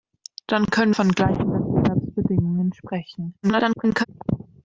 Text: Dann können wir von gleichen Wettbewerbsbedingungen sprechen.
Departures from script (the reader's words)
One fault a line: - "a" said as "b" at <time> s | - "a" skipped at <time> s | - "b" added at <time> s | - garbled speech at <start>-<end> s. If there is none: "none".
- "wir" skipped at 0.9 s
- garbled speech at 3.4-4.1 s